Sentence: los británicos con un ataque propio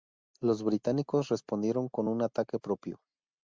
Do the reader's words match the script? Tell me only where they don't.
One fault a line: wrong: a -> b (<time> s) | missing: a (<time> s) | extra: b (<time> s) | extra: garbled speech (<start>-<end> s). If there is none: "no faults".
extra: respondieron (1.3 s)